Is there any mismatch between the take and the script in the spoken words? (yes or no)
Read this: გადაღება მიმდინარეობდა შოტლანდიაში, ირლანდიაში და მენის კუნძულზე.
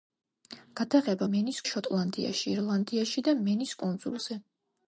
yes